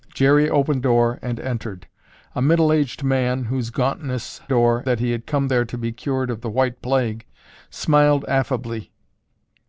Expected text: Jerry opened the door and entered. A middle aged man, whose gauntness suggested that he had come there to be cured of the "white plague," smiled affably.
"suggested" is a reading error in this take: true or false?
true